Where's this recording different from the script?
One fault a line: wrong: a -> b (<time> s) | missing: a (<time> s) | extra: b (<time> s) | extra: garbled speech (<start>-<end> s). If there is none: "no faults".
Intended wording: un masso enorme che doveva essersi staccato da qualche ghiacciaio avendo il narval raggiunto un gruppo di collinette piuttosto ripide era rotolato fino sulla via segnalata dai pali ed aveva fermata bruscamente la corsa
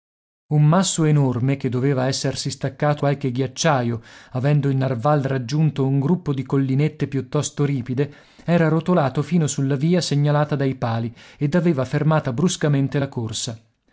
missing: da (3.0 s)